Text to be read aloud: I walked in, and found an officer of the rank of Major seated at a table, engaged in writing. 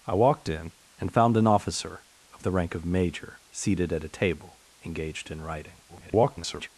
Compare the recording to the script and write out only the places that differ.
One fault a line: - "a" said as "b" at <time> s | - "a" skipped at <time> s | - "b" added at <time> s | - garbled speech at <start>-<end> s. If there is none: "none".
- garbled speech at 5.9-6.7 s